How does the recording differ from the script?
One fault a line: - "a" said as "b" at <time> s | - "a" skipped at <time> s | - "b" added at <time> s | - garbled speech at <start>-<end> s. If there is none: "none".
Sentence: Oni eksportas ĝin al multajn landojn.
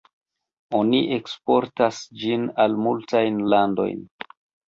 none